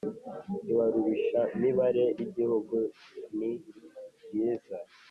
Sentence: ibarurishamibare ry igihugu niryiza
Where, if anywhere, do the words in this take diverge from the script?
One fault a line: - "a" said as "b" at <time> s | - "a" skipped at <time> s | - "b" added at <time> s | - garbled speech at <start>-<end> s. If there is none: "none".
- "ry" skipped at 2.0 s